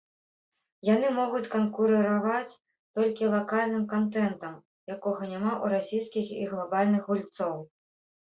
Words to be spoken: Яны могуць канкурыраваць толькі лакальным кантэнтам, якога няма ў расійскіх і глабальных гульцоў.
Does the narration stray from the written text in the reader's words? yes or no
no